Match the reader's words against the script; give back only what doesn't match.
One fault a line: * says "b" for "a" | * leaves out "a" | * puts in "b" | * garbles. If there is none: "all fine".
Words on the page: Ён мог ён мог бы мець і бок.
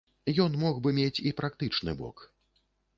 * leaves out "ён мог"
* puts in "практычны"